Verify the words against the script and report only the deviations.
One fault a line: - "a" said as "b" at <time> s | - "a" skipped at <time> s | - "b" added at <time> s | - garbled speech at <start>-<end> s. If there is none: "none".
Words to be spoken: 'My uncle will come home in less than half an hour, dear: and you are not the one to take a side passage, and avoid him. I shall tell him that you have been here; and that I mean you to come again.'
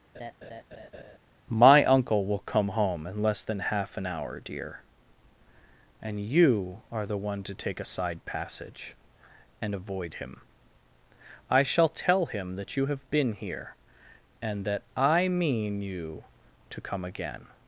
- "not" skipped at 7.0 s